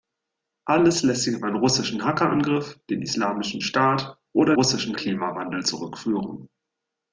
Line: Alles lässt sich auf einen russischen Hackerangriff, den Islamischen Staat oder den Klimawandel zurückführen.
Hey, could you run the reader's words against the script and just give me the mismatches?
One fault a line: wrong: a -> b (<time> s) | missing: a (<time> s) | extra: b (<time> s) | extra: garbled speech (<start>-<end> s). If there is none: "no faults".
wrong: den -> russischen (4.5 s)